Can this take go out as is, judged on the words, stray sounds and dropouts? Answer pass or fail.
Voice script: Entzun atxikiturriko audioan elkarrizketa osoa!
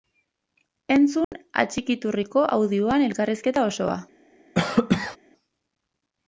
fail